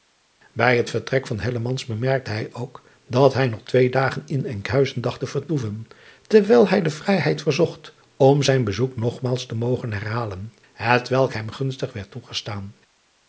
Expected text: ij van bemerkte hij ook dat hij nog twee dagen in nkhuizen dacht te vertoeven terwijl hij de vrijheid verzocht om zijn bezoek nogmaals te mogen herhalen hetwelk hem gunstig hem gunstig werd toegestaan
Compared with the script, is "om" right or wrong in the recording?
right